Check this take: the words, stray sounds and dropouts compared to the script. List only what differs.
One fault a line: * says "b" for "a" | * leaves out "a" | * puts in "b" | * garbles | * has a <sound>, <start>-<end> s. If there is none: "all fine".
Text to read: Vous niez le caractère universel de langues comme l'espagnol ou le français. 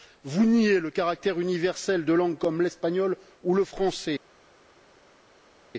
all fine